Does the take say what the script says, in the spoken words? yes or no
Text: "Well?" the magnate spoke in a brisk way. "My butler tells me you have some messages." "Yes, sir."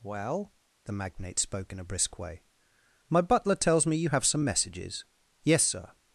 yes